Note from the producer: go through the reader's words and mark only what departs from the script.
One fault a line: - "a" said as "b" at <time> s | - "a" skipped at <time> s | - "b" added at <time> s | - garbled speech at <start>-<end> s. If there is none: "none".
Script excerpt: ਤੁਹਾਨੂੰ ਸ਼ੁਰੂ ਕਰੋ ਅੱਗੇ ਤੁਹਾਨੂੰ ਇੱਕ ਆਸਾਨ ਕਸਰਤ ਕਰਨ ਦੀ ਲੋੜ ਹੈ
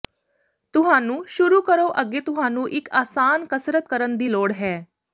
none